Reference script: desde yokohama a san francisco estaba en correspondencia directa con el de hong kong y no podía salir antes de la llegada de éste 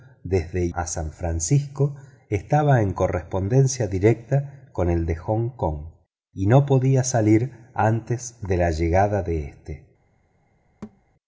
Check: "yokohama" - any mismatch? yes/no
yes